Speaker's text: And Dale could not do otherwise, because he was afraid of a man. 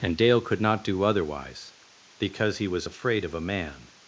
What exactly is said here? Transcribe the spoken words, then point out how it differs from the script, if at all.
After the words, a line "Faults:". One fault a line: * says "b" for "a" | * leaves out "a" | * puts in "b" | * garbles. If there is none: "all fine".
And Dale could not do otherwise, because he was afraid of a man.
Faults:
all fine